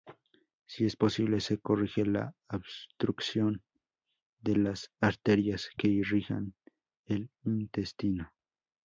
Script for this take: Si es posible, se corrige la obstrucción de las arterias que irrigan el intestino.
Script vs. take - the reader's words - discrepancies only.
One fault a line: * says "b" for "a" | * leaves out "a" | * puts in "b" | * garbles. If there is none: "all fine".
all fine